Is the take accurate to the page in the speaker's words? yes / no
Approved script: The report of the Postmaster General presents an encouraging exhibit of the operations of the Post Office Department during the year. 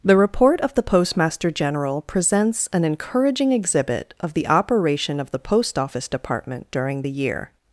no